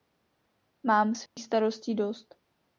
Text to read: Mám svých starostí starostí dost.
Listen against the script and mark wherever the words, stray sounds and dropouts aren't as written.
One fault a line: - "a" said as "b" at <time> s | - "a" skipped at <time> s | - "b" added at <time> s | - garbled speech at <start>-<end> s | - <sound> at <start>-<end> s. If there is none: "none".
- dropout at 1.3-1.4 s
- "starostí" skipped at 1.9 s